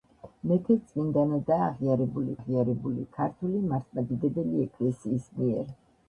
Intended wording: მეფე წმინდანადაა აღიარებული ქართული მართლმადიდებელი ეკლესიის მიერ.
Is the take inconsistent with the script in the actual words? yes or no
yes